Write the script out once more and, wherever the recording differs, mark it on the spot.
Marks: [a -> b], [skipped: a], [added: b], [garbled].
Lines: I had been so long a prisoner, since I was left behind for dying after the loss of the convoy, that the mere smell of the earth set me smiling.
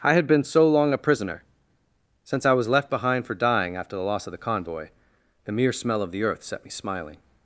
I had been so long a prisoner, since I was left behind for dying after the loss of the convoy, [skipped: that] the mere smell of the earth set me smiling.